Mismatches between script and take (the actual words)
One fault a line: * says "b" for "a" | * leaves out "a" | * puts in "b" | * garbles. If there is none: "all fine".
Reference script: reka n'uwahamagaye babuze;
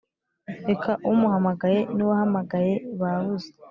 * puts in "umuhamagaye"